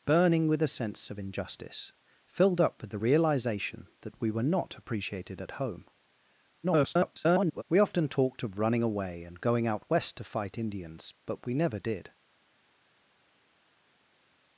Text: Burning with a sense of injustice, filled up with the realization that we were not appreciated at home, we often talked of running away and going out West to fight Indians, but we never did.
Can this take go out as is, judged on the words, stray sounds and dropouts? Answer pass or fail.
fail